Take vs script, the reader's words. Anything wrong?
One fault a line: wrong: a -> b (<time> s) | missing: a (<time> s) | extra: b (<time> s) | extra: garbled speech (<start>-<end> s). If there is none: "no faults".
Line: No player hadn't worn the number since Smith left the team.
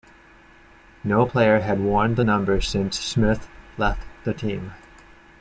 wrong: hadn't -> had (1.6 s)